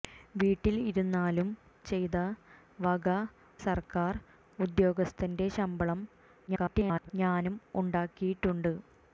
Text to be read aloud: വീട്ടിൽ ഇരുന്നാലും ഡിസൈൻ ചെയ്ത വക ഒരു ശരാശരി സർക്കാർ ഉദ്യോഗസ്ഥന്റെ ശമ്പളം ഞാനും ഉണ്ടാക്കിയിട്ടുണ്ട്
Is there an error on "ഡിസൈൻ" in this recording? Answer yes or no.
yes